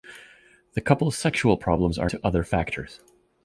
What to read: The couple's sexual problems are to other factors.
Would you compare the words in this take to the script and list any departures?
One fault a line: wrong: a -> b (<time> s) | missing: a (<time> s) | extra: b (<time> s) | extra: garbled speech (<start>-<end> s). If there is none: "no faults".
no faults